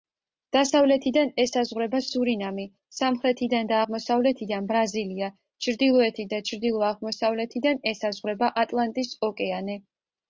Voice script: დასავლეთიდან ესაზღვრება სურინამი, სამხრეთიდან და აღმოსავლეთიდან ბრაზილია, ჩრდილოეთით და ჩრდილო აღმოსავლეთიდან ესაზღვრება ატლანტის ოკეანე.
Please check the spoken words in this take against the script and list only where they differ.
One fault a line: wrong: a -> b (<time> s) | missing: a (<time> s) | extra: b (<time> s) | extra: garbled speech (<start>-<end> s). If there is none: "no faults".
no faults